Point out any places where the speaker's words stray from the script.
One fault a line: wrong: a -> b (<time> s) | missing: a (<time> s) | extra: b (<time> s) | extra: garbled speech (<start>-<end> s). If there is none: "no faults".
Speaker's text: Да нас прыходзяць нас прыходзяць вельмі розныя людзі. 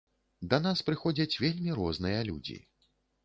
missing: нас прыходзяць (1.4 s)